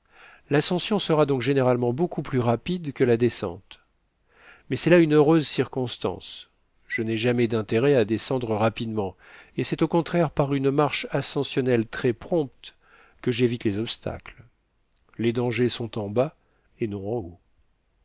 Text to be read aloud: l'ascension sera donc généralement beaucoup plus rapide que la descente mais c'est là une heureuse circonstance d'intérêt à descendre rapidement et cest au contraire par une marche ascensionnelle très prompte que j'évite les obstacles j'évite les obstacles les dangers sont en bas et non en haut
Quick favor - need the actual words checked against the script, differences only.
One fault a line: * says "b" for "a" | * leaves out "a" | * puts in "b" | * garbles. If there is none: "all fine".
* puts in "je n'ai jamais"
* leaves out "j'évite les obstacles"